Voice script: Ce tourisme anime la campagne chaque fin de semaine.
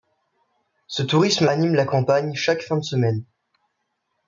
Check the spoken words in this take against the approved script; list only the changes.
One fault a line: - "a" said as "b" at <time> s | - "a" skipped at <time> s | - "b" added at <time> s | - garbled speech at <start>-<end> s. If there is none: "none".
none